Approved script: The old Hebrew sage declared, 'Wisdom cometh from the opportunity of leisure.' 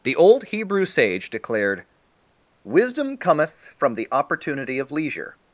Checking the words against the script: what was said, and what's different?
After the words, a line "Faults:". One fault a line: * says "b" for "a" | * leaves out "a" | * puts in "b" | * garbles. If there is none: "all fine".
The old Hebrew sage declared, 'Wisdom cometh from the opportunity of leisure.'
Faults:
all fine